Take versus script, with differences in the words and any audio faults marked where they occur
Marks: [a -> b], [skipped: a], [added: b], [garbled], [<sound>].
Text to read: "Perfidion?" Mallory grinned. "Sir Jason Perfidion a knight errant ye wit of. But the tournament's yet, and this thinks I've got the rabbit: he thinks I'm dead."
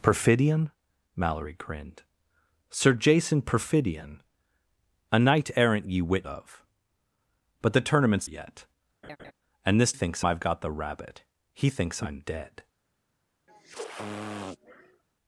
"Perfidion?" Mallory grinned. "Sir Jason Perfidion a knight errant ye wit of. But the tournament's yet, [laugh] and this thinks I've got the rabbit: he thinks I'm dead." [sniff]